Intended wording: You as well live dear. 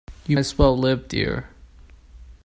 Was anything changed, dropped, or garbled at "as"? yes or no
no